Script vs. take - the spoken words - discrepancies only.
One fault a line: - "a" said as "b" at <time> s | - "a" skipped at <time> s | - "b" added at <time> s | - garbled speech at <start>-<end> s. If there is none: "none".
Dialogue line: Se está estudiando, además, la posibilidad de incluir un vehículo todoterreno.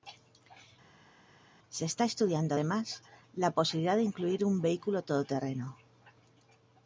none